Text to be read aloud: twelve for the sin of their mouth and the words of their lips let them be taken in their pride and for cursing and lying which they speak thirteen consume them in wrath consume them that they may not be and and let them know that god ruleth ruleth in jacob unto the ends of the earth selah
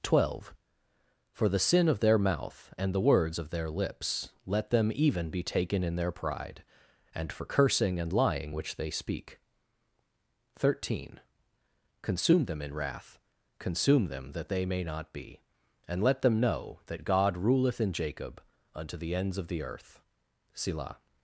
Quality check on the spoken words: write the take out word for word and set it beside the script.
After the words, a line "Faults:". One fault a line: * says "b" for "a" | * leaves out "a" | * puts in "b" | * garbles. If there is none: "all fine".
twelve for the sin of their mouth and the words of their lips let them even be taken in their pride and for cursing and lying which they speak thirteen consume them in wrath consume them that they may not be and let them know that god ruleth in jacob unto the ends of the earth selah
Faults:
* puts in "even"
* leaves out "and"
* leaves out "ruleth"